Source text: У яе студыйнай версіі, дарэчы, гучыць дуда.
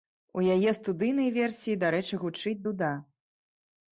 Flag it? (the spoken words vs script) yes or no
no